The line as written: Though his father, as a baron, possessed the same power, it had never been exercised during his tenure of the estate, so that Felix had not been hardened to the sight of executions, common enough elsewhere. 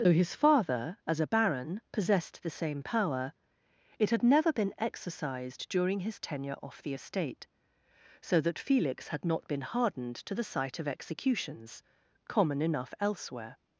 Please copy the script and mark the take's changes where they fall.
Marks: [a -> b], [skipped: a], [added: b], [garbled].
Though his father, as a baron, possessed the same power, it had never been exercised during his tenure [of -> off] the estate, so that Felix had not been hardened to the sight of executions, common enough elsewhere.